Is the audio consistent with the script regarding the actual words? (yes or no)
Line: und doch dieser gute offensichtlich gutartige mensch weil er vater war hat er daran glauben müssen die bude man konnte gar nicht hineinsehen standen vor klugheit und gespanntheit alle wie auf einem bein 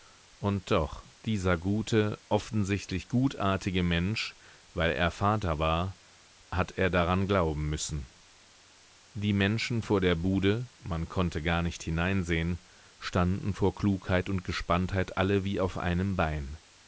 no